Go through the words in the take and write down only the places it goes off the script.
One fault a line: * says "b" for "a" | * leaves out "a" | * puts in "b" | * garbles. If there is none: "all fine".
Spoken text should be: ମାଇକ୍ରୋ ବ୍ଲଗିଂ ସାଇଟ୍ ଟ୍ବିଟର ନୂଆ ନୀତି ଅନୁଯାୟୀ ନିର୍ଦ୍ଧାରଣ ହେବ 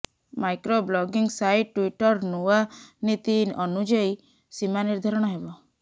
* puts in "ସୀମା"